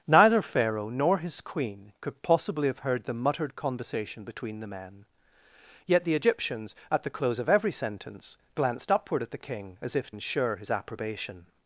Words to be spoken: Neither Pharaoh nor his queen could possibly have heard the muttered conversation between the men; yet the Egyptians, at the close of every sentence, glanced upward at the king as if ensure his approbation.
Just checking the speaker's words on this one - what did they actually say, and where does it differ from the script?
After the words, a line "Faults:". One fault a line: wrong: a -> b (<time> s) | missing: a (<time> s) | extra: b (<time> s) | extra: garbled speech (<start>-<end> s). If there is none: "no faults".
Neither Pharaoh nor his queen could possibly have heard the muttered conversation between the men; yet the Egyptians, at the close of every sentence, glanced upward at the king as if ensure his approbation.
Faults:
no faults